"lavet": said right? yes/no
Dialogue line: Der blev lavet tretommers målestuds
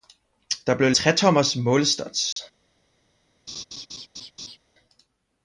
no